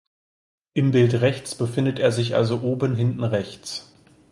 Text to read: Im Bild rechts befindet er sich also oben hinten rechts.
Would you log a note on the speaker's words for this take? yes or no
no